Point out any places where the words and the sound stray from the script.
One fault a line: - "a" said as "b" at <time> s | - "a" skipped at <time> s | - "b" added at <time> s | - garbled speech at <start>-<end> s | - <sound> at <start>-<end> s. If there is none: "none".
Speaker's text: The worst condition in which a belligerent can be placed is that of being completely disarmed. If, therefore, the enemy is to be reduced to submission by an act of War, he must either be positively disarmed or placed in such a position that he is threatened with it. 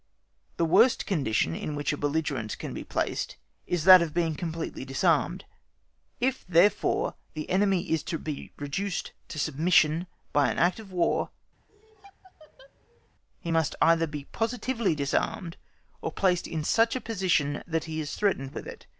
- laugh at 11.7-13.1 s